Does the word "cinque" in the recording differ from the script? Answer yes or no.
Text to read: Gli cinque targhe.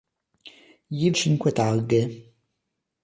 no